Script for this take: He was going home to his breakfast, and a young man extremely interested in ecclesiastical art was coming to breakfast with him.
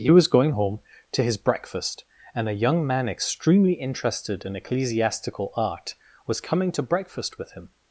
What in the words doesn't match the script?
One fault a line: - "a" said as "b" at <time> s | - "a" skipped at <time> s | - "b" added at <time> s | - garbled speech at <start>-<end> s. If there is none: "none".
none